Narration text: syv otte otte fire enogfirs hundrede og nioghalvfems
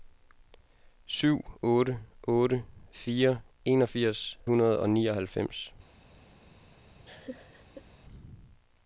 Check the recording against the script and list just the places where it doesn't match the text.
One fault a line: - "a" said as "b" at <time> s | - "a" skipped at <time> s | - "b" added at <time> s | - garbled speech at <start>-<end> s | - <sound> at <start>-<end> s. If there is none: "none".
- laugh at 7.0-7.9 s